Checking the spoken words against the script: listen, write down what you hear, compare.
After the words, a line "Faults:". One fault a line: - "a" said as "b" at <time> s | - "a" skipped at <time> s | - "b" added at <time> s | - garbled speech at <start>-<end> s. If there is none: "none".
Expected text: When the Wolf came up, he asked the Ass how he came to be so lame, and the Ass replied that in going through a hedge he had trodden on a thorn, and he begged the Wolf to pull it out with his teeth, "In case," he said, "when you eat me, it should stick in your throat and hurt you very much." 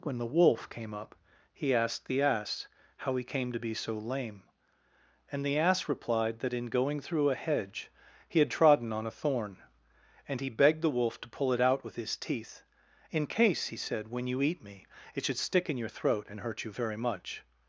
When the Wolf came up, he asked the Ass how he came to be so lame, and the Ass replied that in going through a hedge he had trodden on a thorn, and he begged the Wolf to pull it out with his teeth, "In case," he said, "when you eat me, it should stick in your throat and hurt you very much."
Faults:
none